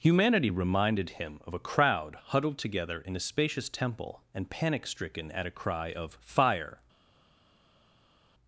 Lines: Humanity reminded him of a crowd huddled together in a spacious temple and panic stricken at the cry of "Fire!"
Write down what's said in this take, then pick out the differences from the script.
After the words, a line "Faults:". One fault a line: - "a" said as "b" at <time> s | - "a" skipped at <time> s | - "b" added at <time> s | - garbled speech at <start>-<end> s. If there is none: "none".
Humanity reminded him of a crowd huddled together in a spacious temple and panic stricken at a cry of "Fire!"
Faults:
- "the" said as "a" at 5.4 s